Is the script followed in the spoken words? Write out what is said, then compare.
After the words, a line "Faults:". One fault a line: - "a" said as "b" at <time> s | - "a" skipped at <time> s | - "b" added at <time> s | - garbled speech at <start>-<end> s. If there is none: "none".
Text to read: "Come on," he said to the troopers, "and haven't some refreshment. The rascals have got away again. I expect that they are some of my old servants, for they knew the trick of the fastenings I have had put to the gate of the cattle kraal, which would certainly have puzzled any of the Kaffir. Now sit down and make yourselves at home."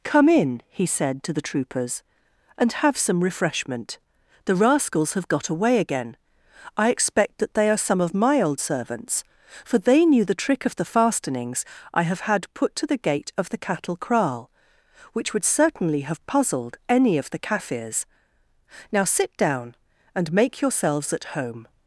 "Come in," he said to the troopers, "and have some refreshment. The rascals have got away again. I expect that they are some of my old servants, for they knew the trick of the fastenings I have had put to the gate of the cattle kraal, which would certainly have puzzled any of the Kaffirs. Now sit down and make yourselves at home."
Faults:
- "on" said as "in" at 0.3 s
- "haven't" said as "have" at 2.7 s
- "Kaffir" said as "Kaffirs" at 17.4 s